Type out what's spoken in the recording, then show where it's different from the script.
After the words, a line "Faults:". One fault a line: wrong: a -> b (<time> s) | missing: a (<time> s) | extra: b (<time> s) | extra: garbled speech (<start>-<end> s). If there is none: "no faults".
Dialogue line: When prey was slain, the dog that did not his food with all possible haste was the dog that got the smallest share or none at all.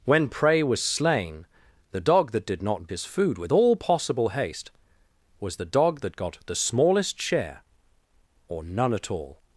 When prey was slain, the dog that did not his food with all possible haste was the dog that got the smallest share or none at all.
Faults:
no faults